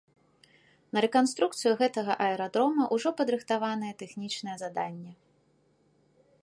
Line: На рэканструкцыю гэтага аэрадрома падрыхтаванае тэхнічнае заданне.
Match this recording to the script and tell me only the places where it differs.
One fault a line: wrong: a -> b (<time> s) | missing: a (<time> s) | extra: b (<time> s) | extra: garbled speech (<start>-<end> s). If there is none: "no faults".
extra: ўжо (3.0 s)